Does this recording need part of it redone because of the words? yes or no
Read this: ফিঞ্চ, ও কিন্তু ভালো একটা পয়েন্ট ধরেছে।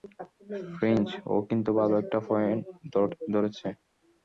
no